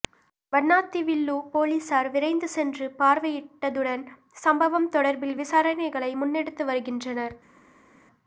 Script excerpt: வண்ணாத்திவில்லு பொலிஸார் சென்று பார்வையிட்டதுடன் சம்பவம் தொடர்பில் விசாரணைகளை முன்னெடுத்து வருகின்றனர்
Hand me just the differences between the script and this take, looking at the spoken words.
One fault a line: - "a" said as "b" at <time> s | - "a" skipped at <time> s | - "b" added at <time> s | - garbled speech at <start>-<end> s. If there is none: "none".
- "விரைந்து" added at 2.1 s